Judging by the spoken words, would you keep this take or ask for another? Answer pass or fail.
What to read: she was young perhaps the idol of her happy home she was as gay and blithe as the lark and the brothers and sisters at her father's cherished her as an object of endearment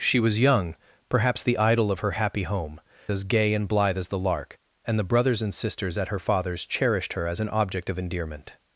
fail